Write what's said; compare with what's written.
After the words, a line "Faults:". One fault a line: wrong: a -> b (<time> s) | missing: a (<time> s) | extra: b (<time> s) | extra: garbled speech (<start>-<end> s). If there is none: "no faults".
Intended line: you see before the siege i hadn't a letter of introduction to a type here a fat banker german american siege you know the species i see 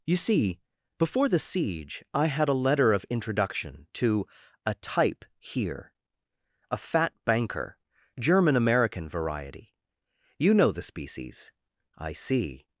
you see before the siege i had a letter of introduction to a type here a fat banker german american variety you know the species i see
Faults:
wrong: hadn't -> had (2.3 s)
wrong: siege -> variety (9.1 s)